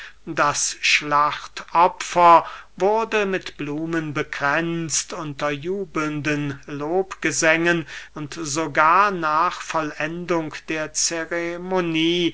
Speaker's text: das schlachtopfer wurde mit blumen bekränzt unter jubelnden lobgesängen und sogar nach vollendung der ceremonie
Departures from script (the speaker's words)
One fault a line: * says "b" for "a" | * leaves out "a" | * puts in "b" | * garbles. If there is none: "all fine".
all fine